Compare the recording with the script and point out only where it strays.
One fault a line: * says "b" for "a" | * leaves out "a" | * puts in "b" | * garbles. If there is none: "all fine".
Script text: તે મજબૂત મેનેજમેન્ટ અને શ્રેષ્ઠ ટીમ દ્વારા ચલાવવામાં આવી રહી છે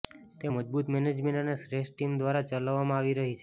all fine